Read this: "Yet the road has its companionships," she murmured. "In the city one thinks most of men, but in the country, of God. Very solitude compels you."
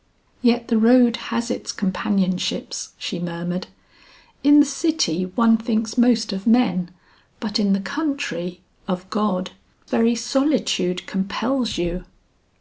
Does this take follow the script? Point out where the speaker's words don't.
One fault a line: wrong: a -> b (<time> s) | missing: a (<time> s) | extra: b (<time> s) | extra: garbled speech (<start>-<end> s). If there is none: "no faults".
no faults